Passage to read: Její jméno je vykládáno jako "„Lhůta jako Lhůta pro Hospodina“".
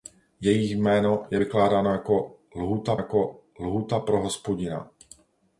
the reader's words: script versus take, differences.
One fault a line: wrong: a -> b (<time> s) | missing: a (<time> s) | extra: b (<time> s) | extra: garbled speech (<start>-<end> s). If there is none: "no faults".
no faults